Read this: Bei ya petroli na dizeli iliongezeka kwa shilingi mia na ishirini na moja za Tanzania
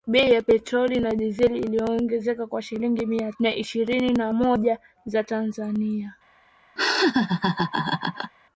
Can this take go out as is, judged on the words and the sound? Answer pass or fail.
fail